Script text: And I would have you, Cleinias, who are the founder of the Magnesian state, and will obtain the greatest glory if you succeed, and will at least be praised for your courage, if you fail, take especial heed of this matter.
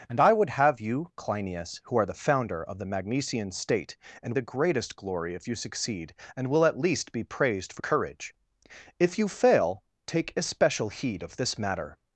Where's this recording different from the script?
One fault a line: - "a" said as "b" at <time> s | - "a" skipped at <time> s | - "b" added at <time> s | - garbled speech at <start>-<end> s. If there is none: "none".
- "will obtain" skipped at 4.3 s
- "your" skipped at 7.8 s